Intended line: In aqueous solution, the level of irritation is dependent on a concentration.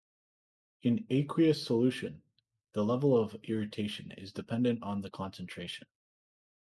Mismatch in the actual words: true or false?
true